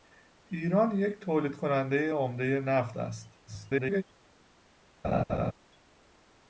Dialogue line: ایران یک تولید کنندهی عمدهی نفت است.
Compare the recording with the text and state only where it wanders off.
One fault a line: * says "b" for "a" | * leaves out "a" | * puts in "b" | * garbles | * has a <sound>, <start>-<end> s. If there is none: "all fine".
* garbles
* has a laugh, 5.0-5.5 s